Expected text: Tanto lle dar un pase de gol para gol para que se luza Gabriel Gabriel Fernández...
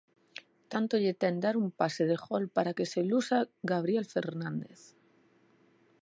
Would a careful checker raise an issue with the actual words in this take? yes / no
yes